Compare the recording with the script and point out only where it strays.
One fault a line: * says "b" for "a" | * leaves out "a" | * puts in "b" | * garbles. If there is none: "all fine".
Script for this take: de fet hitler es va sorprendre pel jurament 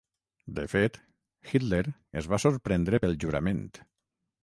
all fine